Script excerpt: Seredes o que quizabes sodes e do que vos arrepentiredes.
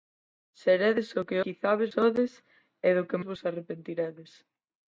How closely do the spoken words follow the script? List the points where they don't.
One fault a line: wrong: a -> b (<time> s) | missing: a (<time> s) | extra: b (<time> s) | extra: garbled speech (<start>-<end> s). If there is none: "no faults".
no faults